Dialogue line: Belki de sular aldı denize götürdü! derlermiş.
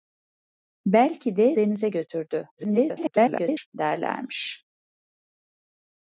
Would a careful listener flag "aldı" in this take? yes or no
yes